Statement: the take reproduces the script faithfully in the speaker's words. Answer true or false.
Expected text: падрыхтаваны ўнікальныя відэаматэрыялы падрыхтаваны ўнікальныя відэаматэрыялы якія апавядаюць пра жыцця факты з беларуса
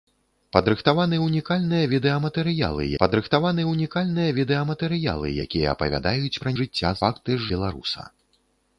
true